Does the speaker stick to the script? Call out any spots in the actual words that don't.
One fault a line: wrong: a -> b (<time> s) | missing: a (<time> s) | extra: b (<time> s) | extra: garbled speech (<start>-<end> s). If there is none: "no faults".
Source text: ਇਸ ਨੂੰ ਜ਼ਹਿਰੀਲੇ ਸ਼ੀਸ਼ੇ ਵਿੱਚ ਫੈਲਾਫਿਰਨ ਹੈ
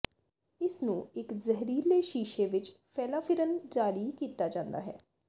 extra: ਇੱਕ (1.1 s)
extra: ਜਾਰੀ ਕੀਤਾ ਜਾਂਦਾ (3.7 s)